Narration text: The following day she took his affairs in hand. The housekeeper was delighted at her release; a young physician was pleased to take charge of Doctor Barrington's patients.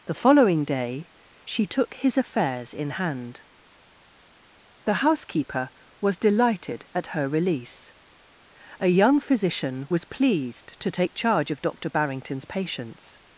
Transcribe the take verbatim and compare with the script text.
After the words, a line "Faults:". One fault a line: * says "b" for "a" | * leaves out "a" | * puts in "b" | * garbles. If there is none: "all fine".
The following day she took his affairs in hand. The housekeeper was delighted at her release; a young physician was pleased to take charge of Doctor Barrington's patients.
Faults:
all fine